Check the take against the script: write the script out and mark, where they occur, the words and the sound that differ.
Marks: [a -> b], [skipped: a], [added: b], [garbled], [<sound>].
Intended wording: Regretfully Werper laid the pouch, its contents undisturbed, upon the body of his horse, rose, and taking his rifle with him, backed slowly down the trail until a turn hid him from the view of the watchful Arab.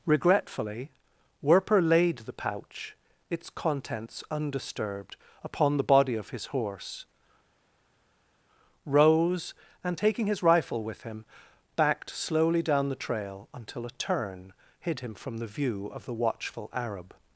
Regretfully Werper laid the pouch, its contents undisturbed, upon the body of his horse, rose, and taking his rifle with him, backed slowly down the trail until a turn hid him from the view of the watchful Arab.